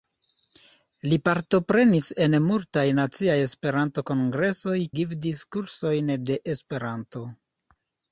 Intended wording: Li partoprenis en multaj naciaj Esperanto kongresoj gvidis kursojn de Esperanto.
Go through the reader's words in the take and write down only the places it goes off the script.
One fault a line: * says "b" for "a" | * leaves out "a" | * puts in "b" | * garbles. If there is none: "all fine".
all fine